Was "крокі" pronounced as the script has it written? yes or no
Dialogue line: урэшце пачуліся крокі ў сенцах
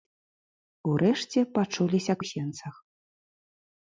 no